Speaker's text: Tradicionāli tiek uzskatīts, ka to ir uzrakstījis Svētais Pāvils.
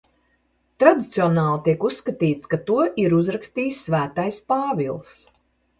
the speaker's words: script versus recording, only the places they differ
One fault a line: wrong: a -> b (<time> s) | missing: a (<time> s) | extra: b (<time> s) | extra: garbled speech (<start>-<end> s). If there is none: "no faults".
no faults